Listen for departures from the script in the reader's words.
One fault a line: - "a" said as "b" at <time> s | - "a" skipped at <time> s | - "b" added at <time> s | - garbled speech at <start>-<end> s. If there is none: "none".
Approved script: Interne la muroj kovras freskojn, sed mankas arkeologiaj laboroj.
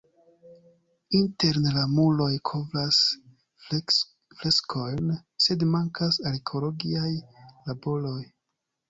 none